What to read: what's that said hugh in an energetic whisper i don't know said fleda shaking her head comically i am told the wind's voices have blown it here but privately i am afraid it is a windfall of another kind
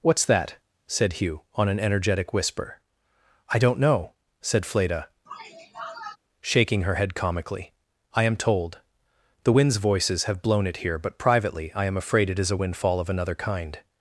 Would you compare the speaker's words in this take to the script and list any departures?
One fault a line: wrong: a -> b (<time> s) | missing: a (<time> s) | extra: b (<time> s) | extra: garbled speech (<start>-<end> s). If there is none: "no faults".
wrong: in -> on (1.6 s)